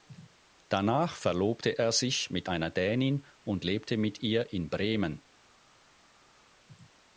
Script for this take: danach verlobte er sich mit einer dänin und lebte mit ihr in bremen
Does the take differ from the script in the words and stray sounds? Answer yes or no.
no